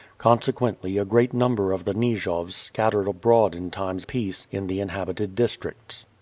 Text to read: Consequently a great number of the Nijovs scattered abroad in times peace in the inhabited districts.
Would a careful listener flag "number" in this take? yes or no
no